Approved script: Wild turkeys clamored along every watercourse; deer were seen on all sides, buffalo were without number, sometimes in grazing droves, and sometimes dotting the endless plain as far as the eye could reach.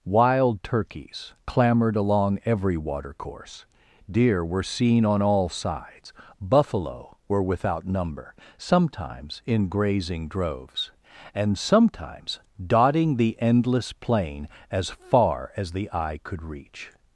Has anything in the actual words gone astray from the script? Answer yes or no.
no